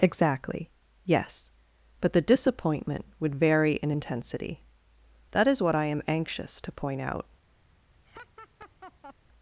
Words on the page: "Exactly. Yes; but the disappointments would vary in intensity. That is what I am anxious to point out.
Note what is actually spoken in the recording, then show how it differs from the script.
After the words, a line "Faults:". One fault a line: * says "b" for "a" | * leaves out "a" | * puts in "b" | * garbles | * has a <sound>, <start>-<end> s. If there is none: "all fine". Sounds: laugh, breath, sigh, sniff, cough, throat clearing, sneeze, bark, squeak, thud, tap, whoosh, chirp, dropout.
"Exactly. Yes; but the disappointment would vary in intensity. That is what I am anxious to point out.
Faults:
* says "disappointment" for "disappointments"
* has a laugh, 8.0-9.1 s